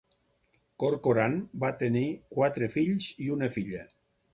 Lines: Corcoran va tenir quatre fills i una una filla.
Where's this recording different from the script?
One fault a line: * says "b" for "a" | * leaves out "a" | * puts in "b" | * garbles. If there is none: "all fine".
* leaves out "una"